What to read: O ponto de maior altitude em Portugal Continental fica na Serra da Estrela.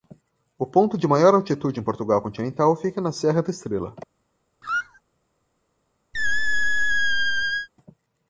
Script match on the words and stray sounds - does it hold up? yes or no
no